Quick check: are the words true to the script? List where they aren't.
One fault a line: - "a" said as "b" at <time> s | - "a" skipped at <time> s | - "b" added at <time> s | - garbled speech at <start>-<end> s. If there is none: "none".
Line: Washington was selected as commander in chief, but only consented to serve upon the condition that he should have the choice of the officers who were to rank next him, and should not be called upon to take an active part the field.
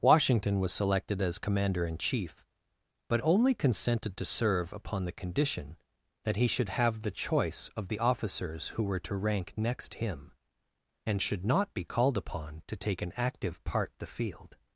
none